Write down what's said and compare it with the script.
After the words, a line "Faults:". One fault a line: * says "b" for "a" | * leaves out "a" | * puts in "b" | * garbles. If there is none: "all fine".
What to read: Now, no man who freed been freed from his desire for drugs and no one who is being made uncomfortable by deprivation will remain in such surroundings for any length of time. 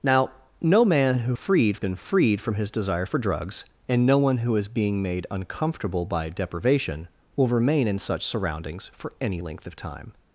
Now, no man who freed been freed from his desire for drugs and no one who is being made uncomfortable by deprivation will remain in such surroundings for any length of time.
Faults:
all fine